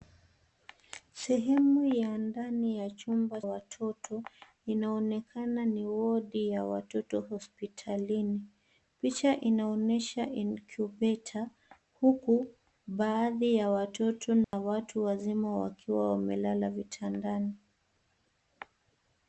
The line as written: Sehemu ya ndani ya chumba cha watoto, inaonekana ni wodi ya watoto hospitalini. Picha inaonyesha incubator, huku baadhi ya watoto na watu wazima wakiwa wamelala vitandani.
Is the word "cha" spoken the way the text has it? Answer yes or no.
no